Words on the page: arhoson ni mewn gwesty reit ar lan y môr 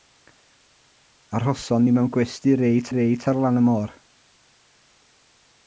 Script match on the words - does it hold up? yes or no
no